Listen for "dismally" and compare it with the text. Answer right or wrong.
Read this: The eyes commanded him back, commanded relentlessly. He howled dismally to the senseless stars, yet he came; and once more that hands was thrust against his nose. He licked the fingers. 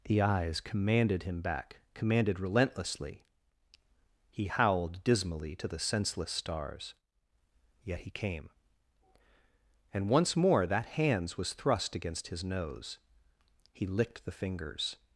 right